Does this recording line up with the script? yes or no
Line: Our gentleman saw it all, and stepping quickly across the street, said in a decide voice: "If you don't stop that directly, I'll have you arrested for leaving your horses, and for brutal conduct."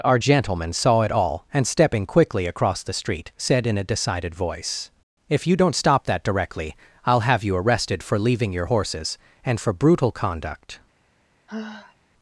no